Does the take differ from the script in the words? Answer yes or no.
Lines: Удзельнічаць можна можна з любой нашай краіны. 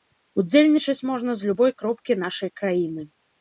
yes